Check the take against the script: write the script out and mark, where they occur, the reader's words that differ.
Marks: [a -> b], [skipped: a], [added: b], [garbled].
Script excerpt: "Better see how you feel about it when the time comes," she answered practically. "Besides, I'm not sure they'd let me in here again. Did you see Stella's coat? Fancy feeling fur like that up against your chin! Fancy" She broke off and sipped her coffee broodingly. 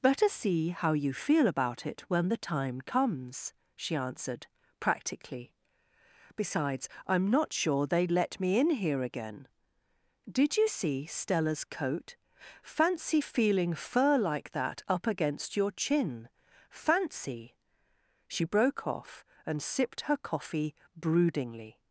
"Better see how you feel about it when the time comes," she answered practically. "Besides, I'm not sure they'd let me in here again. Did you see Stella's coat? Fancy feeling fur like that up against your chin! Fancy" She broke off and sipped her coffee broodingly.